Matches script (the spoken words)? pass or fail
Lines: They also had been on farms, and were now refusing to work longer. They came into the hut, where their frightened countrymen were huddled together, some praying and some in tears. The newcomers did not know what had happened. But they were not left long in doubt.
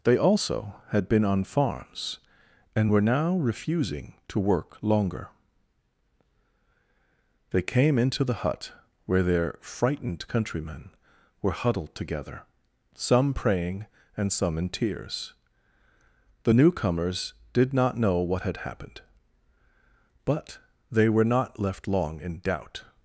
pass